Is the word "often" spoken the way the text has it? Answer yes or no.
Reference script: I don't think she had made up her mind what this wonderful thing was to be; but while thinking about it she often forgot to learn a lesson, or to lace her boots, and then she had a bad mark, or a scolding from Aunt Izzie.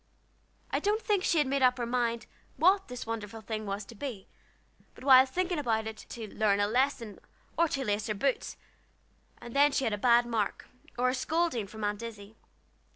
no